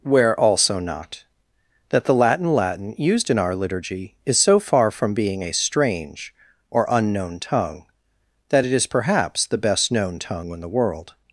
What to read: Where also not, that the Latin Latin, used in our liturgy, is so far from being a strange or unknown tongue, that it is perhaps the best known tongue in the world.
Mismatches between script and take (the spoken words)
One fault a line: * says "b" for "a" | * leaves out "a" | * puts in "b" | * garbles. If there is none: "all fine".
all fine